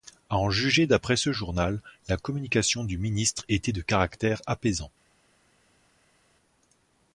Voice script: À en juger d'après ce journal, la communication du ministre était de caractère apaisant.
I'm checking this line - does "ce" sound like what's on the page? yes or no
yes